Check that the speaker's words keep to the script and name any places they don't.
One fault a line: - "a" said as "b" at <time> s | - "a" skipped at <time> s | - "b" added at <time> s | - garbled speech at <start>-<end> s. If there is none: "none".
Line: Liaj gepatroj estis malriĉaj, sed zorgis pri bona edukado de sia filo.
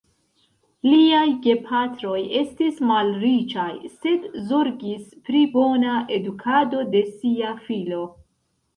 none